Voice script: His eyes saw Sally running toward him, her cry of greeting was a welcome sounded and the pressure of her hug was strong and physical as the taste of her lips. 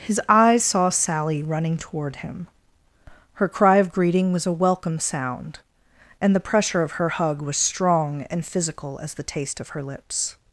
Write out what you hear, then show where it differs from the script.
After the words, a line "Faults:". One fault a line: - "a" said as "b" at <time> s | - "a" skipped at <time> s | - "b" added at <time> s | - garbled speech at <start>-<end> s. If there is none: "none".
His eyes saw Sally running toward him, her cry of greeting was a welcome sound and the pressure of her hug was strong and physical as the taste of her lips.
Faults:
- "sounded" said as "sound" at 5.0 s